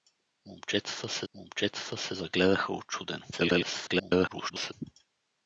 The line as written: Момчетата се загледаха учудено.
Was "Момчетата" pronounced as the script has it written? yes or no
yes